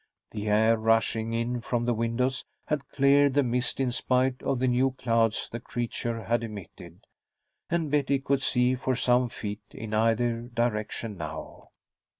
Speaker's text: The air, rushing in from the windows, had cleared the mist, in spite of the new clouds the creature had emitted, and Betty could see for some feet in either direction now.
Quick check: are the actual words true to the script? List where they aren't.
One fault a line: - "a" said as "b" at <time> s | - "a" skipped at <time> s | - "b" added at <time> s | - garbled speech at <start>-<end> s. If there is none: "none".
none